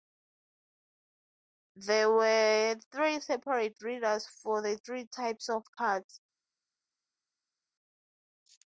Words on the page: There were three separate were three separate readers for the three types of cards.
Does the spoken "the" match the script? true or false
true